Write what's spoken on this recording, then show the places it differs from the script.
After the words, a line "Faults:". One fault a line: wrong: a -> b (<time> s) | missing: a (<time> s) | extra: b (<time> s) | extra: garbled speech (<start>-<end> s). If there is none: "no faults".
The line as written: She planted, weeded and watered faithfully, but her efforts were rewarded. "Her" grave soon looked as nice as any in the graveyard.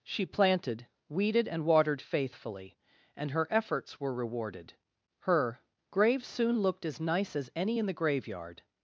She planted, weeded and watered faithfully, and her efforts were rewarded. "Her" grave soon looked as nice as any in the graveyard.
Faults:
wrong: but -> and (3.1 s)